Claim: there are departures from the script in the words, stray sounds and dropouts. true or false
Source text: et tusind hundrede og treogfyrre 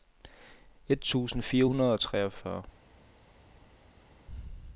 true